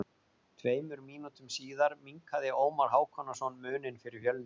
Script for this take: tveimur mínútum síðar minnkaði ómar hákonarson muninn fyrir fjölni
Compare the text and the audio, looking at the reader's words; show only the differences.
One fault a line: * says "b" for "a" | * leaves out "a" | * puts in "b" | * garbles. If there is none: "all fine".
all fine